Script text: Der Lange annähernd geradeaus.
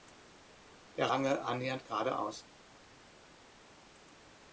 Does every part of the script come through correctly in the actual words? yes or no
yes